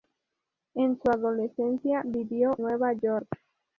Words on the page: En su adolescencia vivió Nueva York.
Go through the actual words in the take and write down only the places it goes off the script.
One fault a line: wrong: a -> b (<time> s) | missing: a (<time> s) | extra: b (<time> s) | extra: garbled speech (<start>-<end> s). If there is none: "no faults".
no faults